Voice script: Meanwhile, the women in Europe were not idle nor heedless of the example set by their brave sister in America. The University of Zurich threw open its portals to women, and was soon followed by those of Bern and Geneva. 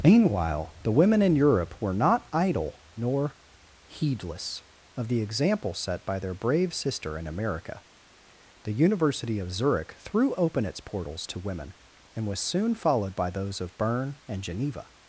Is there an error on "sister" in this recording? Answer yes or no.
no